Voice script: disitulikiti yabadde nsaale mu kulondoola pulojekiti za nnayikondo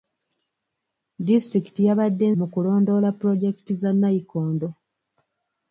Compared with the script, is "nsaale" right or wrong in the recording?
wrong